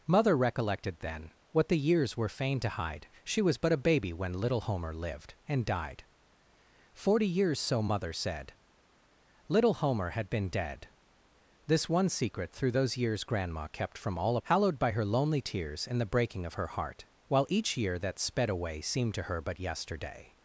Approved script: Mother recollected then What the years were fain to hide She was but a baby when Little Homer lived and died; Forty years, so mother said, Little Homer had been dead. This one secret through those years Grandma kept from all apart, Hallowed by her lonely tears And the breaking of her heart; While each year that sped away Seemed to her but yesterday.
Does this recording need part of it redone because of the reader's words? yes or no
yes